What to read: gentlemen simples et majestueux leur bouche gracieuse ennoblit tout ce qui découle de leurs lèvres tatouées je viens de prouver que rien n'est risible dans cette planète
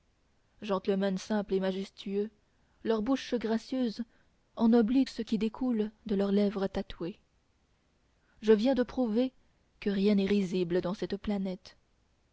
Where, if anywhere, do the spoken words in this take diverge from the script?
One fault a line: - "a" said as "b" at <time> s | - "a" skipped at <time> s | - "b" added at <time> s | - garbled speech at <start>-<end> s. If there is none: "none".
- "tout" skipped at 5.0 s